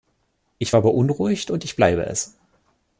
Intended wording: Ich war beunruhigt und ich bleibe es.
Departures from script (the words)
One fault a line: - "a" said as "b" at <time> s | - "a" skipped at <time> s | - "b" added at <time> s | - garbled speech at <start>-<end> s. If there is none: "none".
none